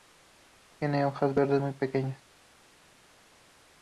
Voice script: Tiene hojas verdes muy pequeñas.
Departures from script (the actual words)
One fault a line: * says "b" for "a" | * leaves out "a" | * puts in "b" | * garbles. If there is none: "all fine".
all fine